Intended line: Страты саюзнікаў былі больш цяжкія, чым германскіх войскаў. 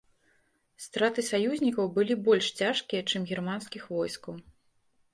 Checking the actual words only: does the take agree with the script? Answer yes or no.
yes